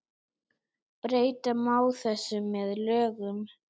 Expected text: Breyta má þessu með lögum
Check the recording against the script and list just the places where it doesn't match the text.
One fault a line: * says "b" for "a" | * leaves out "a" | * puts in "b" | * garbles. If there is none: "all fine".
all fine